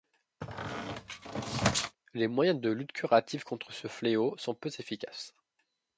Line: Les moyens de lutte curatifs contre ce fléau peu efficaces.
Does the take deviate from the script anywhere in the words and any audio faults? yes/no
yes